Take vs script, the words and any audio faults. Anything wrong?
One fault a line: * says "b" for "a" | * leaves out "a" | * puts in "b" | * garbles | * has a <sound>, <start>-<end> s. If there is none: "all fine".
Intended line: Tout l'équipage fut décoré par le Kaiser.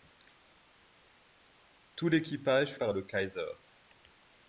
* leaves out "fut décoré"